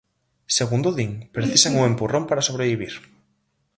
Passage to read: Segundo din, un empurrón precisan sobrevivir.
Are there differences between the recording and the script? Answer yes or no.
yes